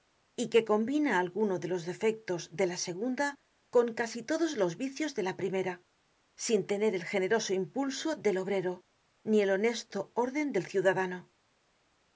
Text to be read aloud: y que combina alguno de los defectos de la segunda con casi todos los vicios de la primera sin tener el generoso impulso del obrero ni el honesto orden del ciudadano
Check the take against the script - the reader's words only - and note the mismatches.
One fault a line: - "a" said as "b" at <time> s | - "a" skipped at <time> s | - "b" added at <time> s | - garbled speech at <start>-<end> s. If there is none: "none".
none